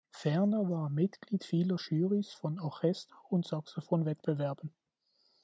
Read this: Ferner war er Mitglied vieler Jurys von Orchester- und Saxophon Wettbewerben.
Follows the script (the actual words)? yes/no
yes